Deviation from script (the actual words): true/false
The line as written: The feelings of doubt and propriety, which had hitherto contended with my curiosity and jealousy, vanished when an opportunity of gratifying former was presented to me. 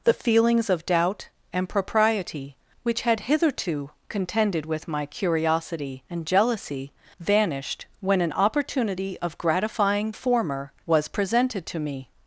false